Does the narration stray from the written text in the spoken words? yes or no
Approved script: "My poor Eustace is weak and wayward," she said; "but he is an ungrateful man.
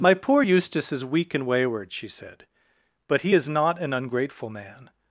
yes